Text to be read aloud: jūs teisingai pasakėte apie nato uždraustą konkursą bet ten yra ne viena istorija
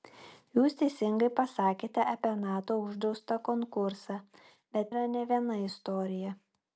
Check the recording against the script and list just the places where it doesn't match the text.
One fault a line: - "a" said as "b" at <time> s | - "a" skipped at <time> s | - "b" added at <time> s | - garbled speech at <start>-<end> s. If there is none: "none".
- "ten" skipped at 4.9 s